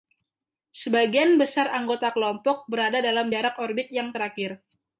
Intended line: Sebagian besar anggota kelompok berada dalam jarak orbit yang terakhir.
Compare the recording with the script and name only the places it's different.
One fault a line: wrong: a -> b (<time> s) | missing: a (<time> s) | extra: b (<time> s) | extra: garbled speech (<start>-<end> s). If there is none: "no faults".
no faults